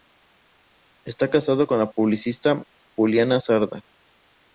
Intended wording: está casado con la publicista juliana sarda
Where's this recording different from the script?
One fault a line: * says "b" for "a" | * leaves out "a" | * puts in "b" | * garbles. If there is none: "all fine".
all fine